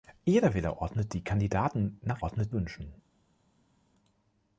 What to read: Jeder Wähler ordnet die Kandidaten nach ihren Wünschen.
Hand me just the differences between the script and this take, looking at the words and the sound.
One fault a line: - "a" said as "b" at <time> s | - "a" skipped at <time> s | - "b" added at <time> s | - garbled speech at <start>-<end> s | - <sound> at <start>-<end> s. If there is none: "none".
- "ihren" said as "ordnet" at 2.2 s